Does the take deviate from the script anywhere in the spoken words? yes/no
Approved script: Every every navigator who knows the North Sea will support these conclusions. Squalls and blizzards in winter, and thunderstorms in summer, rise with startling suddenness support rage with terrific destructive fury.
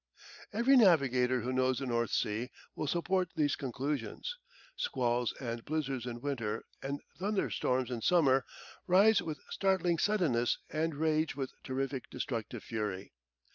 yes